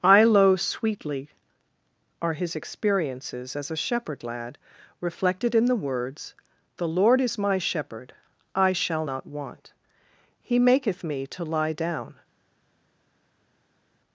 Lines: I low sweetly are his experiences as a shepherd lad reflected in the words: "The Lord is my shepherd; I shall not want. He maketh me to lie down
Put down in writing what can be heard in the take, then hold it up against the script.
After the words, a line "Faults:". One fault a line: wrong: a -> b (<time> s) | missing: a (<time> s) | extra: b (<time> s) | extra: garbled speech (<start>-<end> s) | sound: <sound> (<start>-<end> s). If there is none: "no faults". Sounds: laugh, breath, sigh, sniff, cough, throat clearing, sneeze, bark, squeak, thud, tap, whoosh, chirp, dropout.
I low sweetly are his experiences as a shepherd lad reflected in the words: "The Lord is my shepherd; I shall not want. He maketh me to lie down
Faults:
no faults